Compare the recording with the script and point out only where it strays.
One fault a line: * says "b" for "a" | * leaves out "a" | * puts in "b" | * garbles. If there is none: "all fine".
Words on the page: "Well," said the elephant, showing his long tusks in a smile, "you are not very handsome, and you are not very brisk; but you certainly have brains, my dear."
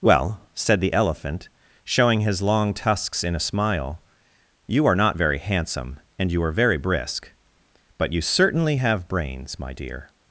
* leaves out "not"